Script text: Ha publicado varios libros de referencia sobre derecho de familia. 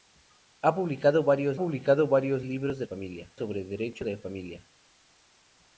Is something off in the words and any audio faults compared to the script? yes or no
yes